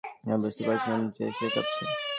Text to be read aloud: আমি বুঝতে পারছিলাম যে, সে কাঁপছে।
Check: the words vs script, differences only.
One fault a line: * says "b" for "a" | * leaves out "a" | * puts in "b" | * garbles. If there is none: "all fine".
all fine